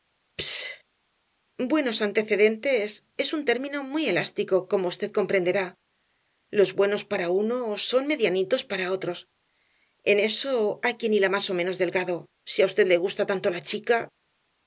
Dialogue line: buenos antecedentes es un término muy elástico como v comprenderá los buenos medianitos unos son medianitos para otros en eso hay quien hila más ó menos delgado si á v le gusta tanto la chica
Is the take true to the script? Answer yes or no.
no